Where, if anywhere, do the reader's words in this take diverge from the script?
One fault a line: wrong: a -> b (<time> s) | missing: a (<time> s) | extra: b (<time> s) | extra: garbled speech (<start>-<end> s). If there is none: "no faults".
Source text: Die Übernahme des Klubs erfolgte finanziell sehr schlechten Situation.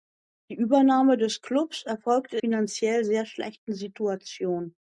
no faults